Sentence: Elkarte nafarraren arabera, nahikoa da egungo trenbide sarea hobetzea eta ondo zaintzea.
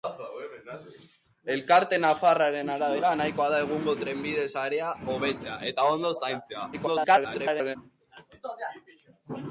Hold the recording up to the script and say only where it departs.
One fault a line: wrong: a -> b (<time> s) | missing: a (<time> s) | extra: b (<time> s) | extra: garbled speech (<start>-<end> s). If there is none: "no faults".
extra: garbled speech (6.7-7.8 s)